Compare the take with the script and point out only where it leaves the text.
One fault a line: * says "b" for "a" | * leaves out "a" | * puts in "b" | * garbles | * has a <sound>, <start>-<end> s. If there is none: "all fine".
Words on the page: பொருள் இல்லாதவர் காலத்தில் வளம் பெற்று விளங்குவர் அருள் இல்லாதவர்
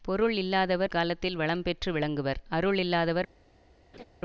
* has a laugh, 3.9-4.0 s